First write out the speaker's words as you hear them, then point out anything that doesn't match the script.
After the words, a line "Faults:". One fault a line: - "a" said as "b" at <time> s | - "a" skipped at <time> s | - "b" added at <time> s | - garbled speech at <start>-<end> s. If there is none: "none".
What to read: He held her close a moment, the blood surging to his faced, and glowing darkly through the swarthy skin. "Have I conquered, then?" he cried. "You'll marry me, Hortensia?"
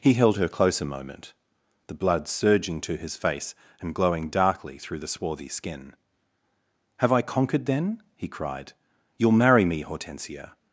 He held her close a moment, the blood surging to his face, and glowing darkly through the swarthy skin. "Have I conquered, then?" he cried. "You'll marry me, Hortensia?"
Faults:
- "faced" said as "face" at 3.2 s